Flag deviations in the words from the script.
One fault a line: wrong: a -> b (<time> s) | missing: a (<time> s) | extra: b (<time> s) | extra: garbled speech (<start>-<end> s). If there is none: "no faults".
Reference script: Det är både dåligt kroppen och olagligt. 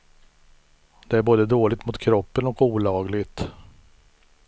extra: mot (1.9 s)